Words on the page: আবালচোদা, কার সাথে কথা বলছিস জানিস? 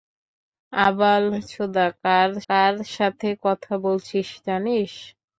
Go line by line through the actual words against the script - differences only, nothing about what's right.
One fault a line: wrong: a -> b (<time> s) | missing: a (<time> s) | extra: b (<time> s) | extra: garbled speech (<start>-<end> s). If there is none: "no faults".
extra: কার (2.5 s)